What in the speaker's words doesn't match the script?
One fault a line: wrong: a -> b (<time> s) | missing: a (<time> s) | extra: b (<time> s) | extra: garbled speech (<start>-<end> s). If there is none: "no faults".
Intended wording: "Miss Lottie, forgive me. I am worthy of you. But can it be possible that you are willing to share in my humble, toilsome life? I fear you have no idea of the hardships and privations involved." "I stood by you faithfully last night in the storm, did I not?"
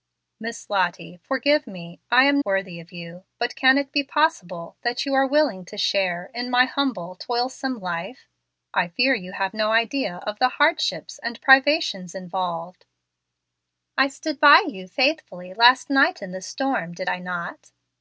no faults